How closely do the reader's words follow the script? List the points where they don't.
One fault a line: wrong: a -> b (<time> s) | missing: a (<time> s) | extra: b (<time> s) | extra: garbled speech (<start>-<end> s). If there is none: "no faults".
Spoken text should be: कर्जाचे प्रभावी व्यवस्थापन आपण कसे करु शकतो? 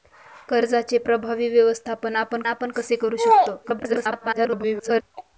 extra: आपण (2.5 s)
extra: garbled speech (3.6-5.0 s)